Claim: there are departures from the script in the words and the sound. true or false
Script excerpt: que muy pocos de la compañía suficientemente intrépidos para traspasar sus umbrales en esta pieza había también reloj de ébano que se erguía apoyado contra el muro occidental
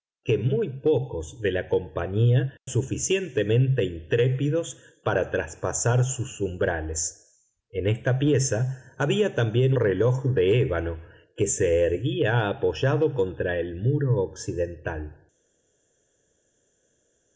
false